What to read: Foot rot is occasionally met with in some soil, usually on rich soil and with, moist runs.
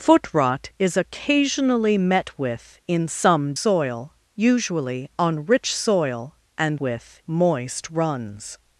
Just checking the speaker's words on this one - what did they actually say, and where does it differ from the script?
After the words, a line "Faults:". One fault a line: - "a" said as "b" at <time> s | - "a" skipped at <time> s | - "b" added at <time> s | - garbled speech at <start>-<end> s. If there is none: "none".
Foot rot is occasionally met with in some soil, usually on rich soil and with, moist runs.
Faults:
none